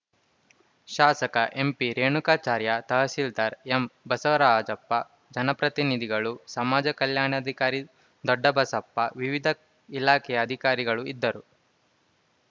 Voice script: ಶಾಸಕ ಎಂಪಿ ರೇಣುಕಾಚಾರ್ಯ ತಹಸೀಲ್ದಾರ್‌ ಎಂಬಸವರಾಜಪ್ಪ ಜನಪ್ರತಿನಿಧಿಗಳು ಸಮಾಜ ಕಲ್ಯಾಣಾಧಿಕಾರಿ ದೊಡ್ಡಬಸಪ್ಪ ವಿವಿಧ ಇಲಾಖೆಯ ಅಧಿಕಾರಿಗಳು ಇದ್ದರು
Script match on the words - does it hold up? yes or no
yes